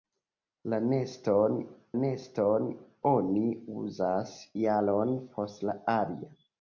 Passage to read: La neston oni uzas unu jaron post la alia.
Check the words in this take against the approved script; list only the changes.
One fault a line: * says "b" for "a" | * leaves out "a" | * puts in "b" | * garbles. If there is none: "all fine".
* puts in "neston"
* leaves out "unu"